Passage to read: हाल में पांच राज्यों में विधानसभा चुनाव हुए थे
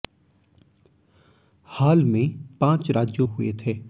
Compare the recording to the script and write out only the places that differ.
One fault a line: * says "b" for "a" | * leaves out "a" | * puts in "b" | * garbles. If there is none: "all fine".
* leaves out "में विधानसभा चुनाव"